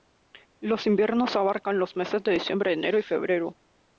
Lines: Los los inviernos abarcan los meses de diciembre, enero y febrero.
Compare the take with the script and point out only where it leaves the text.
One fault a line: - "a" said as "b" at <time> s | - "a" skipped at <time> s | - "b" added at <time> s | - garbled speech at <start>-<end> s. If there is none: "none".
- "los" skipped at 0.9 s